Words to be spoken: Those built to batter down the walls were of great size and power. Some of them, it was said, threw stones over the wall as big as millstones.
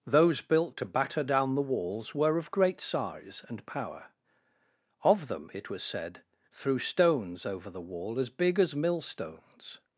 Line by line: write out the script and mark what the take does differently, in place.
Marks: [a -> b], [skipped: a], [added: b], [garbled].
Those built to batter down the walls were of great size and power. [skipped: Some] of them, it was said, threw stones over the wall as big as millstones.